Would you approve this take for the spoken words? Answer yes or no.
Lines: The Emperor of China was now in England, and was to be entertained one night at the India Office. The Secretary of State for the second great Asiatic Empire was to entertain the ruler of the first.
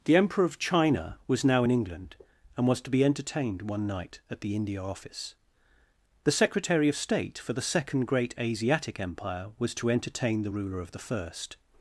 yes